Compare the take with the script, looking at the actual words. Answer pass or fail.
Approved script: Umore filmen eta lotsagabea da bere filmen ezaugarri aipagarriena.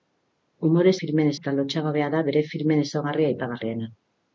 pass